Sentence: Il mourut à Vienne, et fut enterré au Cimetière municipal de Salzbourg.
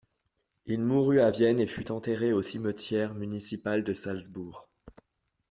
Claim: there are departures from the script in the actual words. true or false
false